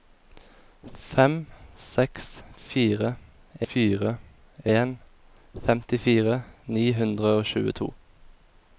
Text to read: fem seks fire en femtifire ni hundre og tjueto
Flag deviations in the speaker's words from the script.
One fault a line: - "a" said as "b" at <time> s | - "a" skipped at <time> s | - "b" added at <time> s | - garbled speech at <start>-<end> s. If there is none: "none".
- "fire" added at 3.7 s